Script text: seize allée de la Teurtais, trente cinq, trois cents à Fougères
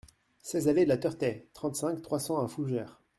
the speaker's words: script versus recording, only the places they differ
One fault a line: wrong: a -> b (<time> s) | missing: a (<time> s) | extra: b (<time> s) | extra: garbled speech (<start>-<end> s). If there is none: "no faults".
no faults